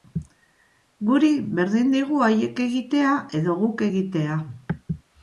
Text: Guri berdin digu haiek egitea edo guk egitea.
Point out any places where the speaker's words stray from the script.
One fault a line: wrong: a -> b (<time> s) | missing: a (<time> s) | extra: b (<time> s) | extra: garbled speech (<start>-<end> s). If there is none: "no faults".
no faults